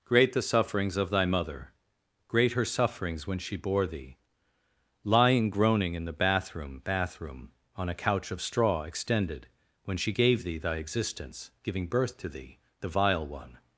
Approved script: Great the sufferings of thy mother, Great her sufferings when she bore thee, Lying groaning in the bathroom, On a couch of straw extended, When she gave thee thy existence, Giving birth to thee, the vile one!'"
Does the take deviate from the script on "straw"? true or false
false